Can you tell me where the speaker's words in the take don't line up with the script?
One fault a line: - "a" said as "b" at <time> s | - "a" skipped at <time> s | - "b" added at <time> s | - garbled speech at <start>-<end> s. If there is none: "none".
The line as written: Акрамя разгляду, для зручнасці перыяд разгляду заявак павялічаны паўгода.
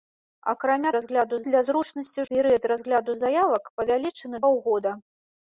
none